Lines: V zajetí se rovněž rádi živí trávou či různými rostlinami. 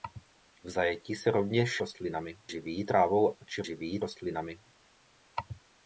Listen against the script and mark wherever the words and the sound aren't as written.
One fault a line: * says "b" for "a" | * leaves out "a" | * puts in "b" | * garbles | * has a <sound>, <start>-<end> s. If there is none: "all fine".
* says "rostlinami" for "rádi"
* says "živí" for "různými"